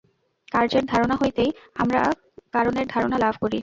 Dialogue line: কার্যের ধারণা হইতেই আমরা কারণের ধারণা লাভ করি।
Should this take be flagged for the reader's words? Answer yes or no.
no